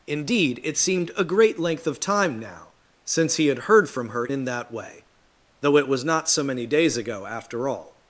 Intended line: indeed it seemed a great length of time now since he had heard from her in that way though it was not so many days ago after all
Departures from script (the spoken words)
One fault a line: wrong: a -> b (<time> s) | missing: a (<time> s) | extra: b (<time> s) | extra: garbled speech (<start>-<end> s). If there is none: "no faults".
no faults